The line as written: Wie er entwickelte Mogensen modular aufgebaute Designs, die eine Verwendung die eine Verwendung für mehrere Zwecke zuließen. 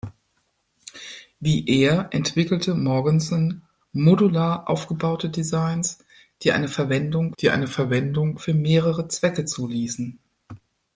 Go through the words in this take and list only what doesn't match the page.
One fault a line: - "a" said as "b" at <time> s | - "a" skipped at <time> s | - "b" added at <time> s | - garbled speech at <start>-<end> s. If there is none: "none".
none